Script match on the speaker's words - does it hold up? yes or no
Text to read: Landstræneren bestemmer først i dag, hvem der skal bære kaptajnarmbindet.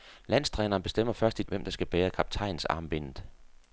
no